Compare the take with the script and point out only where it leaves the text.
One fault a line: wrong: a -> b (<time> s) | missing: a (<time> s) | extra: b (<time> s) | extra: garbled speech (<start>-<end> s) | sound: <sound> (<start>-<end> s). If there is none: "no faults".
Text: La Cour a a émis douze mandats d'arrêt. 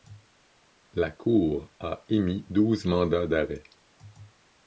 missing: a (2.0 s)